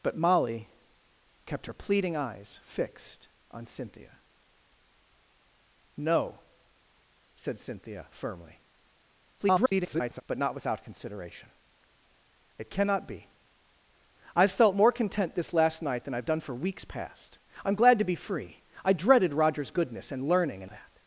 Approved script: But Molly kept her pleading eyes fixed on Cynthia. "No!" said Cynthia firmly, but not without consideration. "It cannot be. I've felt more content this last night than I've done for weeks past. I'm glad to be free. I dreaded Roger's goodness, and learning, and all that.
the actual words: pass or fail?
fail